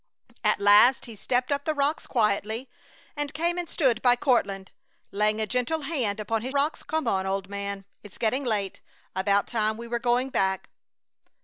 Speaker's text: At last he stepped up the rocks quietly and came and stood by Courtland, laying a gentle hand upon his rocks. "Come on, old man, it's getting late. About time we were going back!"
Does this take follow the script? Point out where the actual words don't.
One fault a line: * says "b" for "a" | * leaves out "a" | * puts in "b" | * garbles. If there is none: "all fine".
all fine